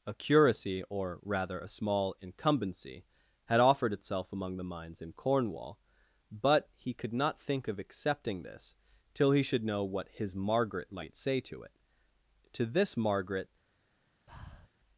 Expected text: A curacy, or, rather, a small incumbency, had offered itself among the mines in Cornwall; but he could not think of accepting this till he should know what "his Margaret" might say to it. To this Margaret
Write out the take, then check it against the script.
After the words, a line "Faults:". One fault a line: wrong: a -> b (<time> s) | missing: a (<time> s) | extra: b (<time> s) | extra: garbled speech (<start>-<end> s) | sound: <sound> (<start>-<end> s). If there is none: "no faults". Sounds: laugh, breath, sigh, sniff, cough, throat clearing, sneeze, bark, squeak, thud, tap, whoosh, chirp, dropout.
A curacy, or, rather, a small incumbency, had offered itself among the mines in Cornwall; but he could not think of accepting this till he should know what "his Margaret" might say to it. To this Margaret
Faults:
sound: breath (14.3-14.7 s)